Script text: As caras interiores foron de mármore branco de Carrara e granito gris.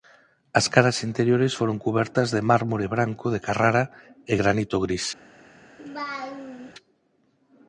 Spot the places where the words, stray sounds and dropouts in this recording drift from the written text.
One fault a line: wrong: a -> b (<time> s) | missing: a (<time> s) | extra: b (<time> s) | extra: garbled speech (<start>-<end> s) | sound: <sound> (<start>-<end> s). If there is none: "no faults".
extra: cubertas (1.8 s)
sound: laugh (5.8-6.7 s)